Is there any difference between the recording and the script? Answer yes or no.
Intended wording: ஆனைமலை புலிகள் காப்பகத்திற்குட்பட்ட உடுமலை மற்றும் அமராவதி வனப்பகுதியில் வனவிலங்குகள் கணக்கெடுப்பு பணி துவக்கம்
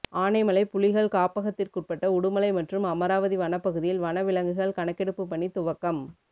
no